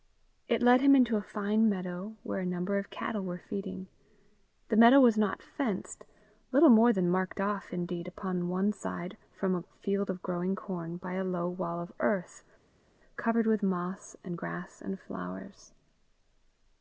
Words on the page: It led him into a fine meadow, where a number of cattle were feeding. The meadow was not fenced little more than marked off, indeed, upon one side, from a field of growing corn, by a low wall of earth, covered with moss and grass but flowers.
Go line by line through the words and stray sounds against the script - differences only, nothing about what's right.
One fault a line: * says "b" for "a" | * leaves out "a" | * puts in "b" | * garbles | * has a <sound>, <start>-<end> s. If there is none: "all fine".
* says "and" for "but"